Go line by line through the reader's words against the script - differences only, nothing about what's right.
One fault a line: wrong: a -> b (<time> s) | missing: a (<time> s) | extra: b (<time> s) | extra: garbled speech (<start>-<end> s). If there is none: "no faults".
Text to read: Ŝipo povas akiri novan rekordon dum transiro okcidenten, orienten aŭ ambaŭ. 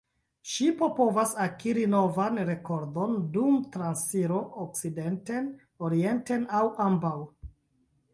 no faults